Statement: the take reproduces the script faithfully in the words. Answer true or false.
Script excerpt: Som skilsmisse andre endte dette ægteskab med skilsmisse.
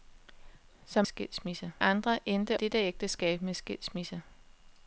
true